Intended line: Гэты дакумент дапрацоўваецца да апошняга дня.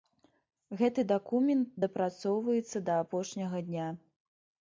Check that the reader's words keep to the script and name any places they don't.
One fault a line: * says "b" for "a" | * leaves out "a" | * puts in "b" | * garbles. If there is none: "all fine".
all fine